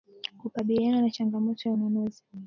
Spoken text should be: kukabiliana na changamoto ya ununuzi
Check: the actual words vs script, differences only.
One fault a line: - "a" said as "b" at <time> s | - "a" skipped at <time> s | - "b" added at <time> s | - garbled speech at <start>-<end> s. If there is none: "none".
none